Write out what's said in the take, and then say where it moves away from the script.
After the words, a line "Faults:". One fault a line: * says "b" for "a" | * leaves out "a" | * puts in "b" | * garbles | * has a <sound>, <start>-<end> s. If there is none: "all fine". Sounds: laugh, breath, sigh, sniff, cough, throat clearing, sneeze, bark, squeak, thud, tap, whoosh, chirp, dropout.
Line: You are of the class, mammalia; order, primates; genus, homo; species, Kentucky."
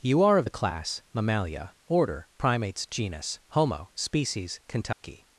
You are of the class, mammalia; order, primates; genus, homo; species, Kentucky."
Faults:
* has a dropout, 4.9-5.0 s